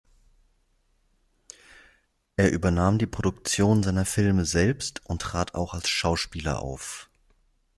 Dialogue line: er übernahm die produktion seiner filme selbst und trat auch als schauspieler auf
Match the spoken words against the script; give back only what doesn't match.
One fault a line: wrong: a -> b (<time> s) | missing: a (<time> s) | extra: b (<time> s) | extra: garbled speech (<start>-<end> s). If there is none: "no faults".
no faults